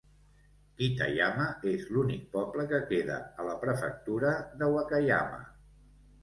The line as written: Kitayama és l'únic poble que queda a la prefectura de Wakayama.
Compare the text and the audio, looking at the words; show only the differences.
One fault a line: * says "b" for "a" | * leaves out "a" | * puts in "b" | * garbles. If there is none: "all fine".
all fine